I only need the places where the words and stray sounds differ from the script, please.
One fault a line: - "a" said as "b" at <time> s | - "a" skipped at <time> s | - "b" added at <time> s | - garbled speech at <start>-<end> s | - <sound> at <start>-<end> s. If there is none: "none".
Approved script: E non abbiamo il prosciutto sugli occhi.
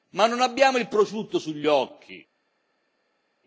- "E" said as "Ma" at 0.1 s